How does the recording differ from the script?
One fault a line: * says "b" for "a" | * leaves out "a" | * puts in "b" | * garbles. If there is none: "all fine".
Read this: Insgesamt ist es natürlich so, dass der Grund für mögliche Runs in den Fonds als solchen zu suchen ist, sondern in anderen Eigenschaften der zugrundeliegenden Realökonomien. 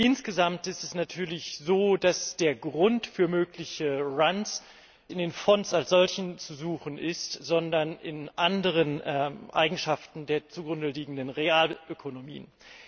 all fine